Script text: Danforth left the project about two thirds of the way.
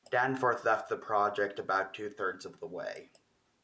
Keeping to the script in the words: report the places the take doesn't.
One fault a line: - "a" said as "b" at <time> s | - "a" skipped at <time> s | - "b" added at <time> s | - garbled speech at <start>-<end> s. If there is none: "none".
none